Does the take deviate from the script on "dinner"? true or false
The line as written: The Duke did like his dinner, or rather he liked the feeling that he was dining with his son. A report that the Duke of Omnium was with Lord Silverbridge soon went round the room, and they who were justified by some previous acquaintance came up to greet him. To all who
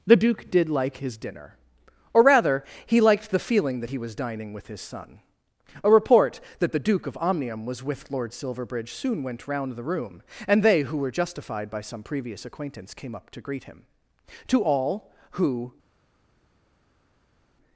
false